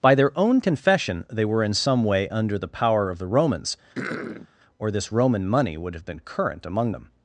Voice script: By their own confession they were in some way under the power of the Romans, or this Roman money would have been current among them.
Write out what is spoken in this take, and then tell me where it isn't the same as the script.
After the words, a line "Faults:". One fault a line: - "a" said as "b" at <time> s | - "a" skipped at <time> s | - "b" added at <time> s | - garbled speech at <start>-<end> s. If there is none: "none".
By their own confession they were in some way under the power of the Romans, or this Roman money would have been current among them.
Faults:
none